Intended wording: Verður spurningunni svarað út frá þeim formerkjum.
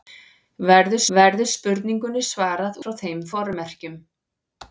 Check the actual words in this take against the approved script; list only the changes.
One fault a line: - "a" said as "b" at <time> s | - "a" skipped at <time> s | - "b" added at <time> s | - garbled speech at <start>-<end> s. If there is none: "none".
- "verður" added at 1.2 s
- "út" skipped at 2.8 s